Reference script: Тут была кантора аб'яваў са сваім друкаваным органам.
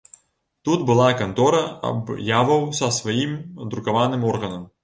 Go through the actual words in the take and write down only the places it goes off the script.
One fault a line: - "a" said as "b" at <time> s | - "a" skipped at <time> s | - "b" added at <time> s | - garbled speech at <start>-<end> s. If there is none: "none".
none